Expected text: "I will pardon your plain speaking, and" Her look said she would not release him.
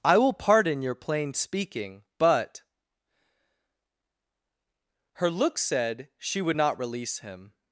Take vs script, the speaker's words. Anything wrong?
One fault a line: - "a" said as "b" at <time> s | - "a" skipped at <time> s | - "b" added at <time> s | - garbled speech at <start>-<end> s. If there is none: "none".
- "and" said as "but" at 2.2 s